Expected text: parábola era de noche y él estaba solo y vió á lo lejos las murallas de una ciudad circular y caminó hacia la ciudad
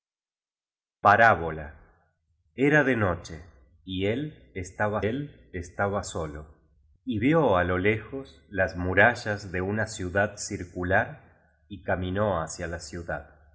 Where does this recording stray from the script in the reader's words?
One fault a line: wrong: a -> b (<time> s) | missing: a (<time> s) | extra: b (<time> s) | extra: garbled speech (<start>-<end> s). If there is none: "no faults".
extra: él estaba (5.0 s)